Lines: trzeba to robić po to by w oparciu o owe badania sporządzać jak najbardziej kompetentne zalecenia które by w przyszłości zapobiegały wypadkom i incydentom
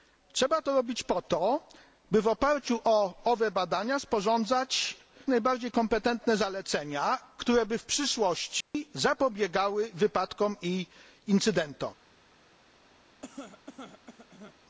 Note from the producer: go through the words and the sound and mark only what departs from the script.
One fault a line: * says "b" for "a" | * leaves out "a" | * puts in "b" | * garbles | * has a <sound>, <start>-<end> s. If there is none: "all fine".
* leaves out "jak"
* has a dropout, 8.6-8.7 s
* has a cough, 13.2-14.6 s